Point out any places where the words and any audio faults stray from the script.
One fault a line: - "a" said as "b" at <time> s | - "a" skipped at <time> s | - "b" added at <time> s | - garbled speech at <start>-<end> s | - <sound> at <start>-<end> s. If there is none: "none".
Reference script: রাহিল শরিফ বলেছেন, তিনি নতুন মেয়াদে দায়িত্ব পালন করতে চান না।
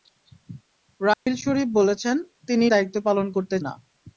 - dropout at 1.1-1.3 s
- "নতুন মেয়াদে" skipped at 2.6 s
- "চান" skipped at 3.6 s